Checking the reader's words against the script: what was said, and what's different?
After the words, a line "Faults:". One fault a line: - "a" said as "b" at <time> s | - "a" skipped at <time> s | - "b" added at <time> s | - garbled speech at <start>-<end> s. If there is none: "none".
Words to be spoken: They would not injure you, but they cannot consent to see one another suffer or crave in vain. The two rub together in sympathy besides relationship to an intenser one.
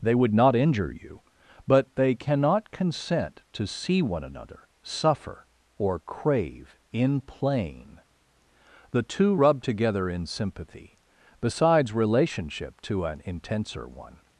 They would not injure you, but they cannot consent to see one another suffer or crave in plain. The two rub together in sympathy besides relationship to an intenser one.
Faults:
- "vain" said as "plain" at 7.2 s